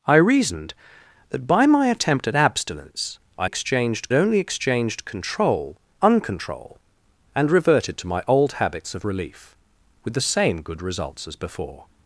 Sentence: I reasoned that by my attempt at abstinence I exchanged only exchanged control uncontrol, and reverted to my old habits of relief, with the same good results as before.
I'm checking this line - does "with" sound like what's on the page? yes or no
yes